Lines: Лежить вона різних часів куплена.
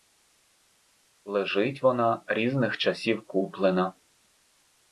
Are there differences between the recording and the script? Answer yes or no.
no